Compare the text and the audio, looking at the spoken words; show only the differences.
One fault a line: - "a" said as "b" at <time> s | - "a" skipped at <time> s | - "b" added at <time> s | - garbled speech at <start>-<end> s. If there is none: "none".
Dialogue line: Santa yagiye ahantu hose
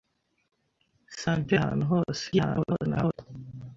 - "yagiye" skipped at 1.5 s
- garbled speech at 2.3-3.1 s